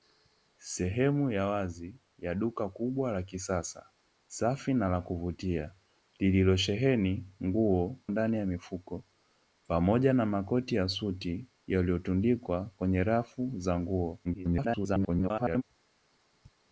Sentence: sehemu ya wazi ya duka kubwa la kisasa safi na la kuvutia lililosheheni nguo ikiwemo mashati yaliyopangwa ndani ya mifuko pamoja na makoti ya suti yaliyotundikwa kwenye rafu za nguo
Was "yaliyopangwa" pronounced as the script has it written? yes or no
no